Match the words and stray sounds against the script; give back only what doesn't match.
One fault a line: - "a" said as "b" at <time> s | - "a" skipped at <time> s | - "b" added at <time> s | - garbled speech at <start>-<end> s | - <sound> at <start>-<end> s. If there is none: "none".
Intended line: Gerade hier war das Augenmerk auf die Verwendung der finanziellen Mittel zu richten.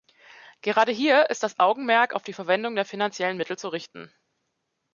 - "war" said as "ist" at 1.3 s